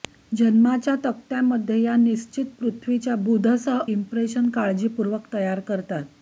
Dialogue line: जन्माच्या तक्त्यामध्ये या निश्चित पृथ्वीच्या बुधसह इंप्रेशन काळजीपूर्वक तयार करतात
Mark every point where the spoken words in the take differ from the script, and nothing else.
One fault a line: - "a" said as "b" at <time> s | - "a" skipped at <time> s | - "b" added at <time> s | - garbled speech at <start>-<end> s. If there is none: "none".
none